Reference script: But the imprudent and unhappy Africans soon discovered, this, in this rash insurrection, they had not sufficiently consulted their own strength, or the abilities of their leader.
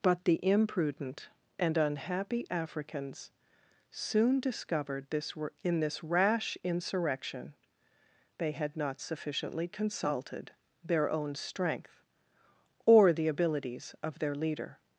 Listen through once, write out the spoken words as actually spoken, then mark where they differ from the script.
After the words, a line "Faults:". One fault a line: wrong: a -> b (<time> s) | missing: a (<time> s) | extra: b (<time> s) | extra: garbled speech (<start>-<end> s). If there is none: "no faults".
But the imprudent and unhappy Africans soon discovered, this, in this rash insurrection, they had not sufficiently consulted their own strength, or the abilities of their leader.
Faults:
no faults